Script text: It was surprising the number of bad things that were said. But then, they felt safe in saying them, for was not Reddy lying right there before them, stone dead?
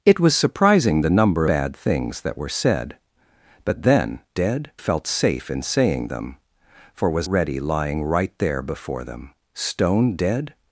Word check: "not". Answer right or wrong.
wrong